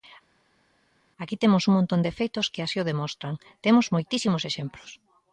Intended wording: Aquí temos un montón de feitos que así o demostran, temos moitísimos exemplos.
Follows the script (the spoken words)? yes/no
yes